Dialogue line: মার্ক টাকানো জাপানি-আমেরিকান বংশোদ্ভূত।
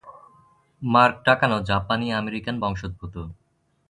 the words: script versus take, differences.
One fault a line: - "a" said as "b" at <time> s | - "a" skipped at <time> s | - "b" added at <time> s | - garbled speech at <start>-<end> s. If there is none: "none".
none